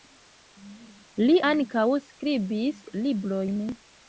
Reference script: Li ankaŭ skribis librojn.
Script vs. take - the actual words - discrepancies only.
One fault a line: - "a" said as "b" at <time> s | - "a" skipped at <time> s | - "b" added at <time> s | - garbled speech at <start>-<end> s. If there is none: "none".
none